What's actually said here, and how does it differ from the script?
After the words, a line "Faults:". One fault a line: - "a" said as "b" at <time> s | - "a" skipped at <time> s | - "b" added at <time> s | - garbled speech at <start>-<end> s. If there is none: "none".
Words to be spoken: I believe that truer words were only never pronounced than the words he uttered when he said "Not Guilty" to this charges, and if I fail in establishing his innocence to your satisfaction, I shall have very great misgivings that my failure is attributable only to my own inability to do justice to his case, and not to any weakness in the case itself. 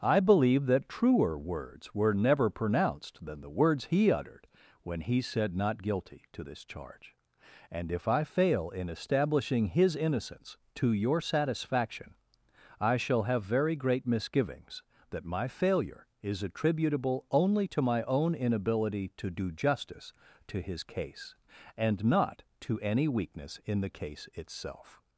I believe that truer words were never pronounced than the words he uttered when he said "Not Guilty" to this charge, and if I fail in establishing his innocence to your satisfaction, I shall have very great misgivings that my failure is attributable only to my own inability to do justice to his case, and not to any weakness in the case itself.
Faults:
- "only" skipped at 2.1 s
- "charges" said as "charge" at 6.6 s